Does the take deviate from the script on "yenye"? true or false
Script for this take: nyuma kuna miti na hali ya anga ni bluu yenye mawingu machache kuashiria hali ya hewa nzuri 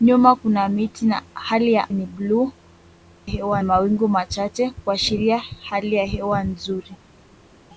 true